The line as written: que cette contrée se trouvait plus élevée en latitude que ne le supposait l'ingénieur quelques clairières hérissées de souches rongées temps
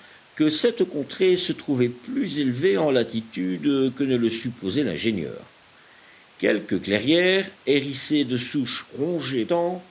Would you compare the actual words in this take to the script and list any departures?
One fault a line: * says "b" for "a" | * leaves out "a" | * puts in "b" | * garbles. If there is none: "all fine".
all fine